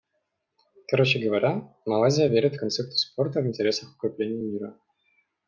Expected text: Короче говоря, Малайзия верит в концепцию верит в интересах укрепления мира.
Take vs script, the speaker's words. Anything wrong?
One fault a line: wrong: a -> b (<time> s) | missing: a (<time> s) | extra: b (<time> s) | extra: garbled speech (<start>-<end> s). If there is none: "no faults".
wrong: верит -> спорта (3.0 s)